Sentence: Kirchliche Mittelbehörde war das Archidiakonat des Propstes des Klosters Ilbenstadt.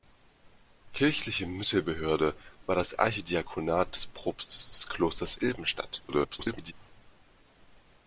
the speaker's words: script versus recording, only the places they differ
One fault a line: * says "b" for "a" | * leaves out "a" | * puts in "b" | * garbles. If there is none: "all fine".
* garbles